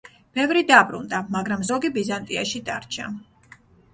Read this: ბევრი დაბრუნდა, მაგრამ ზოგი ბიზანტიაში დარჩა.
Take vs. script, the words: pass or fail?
pass